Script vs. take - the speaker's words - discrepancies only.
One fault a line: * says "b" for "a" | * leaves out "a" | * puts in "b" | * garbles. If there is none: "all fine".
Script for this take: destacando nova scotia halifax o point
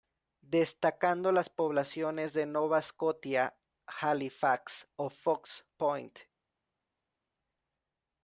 * puts in "las poblaciones de"
* puts in "fox"